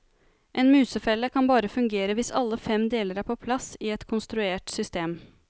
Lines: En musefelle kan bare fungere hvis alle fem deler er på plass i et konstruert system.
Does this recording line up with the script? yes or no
yes